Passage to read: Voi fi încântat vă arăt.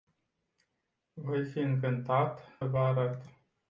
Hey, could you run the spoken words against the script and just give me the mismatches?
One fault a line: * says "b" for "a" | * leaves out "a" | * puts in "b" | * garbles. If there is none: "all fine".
all fine